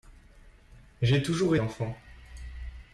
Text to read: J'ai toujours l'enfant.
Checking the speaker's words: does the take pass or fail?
pass